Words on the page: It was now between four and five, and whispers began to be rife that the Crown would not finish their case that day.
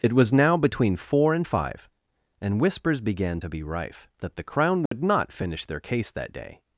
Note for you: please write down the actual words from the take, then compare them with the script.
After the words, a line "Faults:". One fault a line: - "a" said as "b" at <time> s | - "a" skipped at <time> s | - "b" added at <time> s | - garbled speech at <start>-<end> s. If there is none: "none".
It was now between four and five, and whispers began to be rife that the Crown would not finish their case that day.
Faults:
none